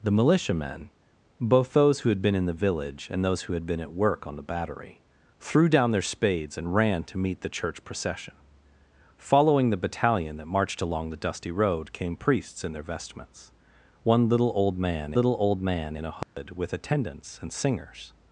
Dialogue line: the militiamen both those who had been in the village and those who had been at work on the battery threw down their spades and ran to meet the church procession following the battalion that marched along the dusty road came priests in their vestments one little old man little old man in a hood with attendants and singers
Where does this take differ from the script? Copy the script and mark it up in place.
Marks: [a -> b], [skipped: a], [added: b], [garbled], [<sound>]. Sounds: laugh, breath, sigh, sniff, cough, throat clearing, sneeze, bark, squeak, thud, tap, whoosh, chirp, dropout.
the militiamen both those who had been in the village and those who had been at work on the battery threw down their spades and ran to meet the church procession following the battalion that marched along the dusty road came priests in their vestments one little old man little old man in a hood [dropout] with attendants and singers